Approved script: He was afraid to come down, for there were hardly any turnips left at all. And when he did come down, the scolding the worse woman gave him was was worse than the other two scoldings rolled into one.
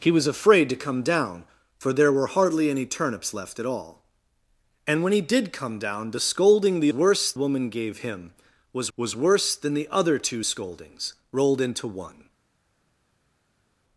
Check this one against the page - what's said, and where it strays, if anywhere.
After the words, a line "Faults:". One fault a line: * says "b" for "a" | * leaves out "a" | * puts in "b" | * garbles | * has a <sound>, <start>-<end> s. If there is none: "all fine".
He was afraid to come down, for there were hardly any turnips left at all. And when he did come down, the scolding the worse woman gave him was was worse than the other two scoldings rolled into one.
Faults:
all fine